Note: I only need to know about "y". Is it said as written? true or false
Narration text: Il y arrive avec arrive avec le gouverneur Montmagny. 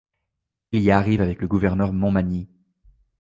true